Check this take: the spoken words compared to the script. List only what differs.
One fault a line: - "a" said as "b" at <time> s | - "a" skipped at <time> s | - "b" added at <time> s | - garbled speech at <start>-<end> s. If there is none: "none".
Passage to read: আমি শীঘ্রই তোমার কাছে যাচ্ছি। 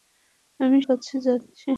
- "শীঘ্রই তোমার" skipped at 0.8 s